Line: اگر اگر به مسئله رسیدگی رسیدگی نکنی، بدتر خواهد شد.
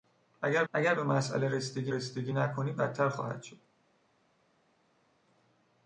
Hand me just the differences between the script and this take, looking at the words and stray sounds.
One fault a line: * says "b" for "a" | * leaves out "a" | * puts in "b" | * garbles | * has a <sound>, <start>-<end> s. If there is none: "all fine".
all fine